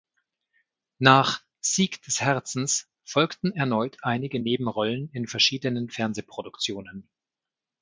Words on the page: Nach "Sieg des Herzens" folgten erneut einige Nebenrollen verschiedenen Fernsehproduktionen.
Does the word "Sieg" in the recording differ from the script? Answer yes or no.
no